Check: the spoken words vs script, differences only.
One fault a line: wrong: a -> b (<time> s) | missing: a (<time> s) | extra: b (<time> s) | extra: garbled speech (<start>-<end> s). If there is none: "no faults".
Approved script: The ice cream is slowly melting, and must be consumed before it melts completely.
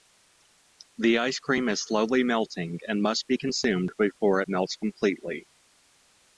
no faults